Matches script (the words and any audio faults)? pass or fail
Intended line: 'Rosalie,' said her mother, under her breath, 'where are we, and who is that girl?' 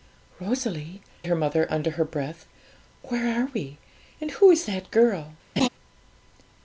fail